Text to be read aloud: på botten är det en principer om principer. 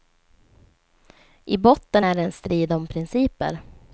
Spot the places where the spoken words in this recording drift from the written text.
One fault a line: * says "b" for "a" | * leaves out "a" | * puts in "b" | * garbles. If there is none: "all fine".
* says "I" for "på"
* says "strid" for "principer"